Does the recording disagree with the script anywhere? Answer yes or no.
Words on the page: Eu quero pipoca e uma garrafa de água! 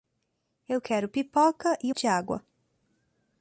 yes